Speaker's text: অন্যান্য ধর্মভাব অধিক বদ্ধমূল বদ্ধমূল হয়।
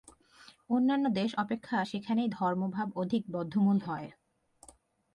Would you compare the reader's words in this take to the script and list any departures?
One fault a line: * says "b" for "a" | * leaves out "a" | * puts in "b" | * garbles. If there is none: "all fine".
* puts in "দেশ অপেক্ষা সেখানেই"
* leaves out "বদ্ধমূল"